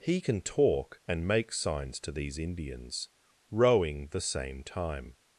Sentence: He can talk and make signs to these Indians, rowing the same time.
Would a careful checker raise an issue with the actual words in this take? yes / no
no